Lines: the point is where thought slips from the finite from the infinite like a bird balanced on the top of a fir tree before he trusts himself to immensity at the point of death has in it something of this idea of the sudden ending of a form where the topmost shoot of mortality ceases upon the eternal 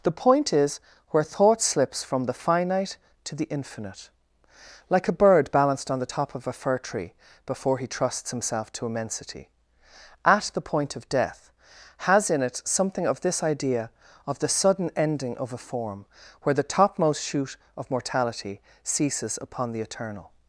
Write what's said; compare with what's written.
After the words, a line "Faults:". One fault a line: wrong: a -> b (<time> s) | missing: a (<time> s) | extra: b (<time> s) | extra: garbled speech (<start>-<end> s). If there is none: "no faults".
the point is where thought slips from the finite to the infinite like a bird balanced on the top of a fir tree before he trusts himself to immensity at the point of death has in it something of this idea of the sudden ending of a form where the topmost shoot of mortality ceases upon the eternal
Faults:
wrong: from -> to (3.2 s)